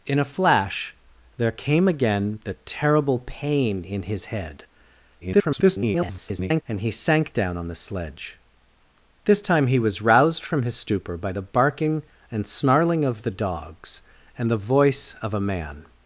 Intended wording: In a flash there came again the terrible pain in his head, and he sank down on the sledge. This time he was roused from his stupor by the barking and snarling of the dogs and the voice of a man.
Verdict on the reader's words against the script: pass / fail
fail